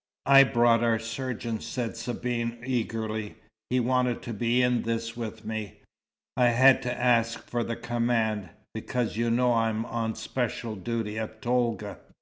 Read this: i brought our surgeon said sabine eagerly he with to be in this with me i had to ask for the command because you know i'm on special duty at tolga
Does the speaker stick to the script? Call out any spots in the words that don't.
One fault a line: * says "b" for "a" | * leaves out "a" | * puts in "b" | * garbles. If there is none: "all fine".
* says "wanted" for "with"